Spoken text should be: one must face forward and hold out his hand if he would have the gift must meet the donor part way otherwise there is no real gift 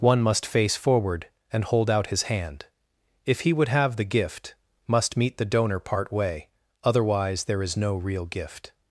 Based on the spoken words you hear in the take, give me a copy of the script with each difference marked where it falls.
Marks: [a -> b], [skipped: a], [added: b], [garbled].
one must face forward and hold out his hand if he would have the gift must meet the donor part way otherwise there is no real gift